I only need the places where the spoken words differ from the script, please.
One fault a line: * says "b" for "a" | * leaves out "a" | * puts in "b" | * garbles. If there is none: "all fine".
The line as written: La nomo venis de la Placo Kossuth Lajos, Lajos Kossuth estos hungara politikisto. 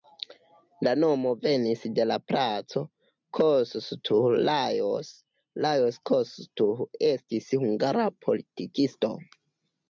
* says "estis" for "estos"